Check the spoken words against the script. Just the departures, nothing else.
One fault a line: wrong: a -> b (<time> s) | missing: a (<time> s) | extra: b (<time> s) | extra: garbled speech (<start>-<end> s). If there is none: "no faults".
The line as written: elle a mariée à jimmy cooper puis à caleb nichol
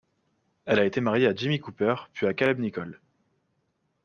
extra: été (0.8 s)